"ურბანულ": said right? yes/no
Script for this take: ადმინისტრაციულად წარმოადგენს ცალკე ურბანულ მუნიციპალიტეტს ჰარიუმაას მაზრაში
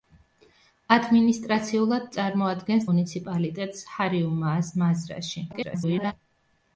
no